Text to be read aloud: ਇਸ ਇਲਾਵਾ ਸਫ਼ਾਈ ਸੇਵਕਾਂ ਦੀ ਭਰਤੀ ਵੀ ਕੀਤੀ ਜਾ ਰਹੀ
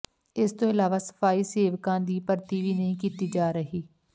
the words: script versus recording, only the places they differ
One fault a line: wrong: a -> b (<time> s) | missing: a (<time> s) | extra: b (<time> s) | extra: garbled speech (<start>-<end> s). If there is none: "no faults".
extra: ਤੋਂ (0.5 s)
extra: ਨਹੀਂ (2.7 s)